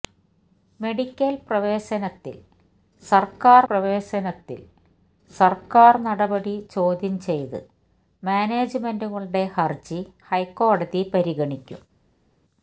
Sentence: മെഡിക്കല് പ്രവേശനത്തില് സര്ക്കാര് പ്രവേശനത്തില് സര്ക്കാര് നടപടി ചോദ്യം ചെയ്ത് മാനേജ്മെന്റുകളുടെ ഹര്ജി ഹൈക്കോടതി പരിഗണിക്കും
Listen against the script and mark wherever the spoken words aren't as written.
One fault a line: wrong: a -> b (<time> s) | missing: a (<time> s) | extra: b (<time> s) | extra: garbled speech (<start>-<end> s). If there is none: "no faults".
no faults